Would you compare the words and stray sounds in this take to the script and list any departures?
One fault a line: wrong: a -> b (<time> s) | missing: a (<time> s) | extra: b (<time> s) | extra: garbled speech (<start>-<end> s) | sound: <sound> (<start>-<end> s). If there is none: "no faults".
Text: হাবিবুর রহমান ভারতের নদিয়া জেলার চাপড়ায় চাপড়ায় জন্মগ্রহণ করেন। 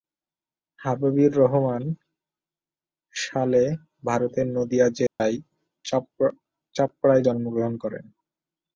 extra: সালে (3.1 s)
sound: dropout (5.1-5.2 s)
missing: চাপড়ায় (7.2 s)